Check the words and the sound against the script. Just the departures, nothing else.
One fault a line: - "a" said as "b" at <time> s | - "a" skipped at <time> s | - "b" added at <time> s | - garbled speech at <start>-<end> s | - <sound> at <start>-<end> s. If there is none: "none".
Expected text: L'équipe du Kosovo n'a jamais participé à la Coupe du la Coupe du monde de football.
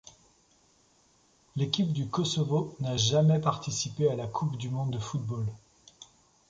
- "la Coupe du" skipped at 4.7 s